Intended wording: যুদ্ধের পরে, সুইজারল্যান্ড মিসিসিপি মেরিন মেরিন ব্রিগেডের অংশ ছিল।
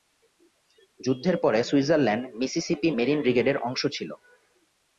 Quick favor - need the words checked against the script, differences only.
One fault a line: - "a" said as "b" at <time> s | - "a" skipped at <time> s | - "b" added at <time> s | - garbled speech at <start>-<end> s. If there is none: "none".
- "মেরিন" skipped at 3.2 s